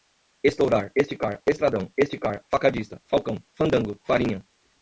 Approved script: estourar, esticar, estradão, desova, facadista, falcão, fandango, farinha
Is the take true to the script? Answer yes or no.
no